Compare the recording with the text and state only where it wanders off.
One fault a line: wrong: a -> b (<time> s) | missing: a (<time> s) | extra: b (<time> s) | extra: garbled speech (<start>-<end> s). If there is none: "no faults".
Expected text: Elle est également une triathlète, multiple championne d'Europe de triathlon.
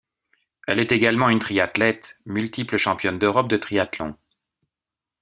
no faults